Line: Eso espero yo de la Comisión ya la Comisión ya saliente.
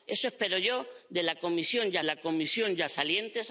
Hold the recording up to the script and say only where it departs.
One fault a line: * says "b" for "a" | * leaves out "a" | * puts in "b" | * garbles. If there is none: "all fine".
all fine